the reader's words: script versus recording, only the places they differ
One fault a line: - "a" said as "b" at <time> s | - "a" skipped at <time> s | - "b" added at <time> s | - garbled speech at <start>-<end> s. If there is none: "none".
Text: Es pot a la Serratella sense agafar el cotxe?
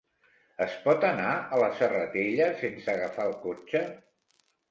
- "anar" added at 1.1 s